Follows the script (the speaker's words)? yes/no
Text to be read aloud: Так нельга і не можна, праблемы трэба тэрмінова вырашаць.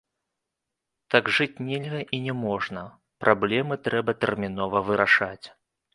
no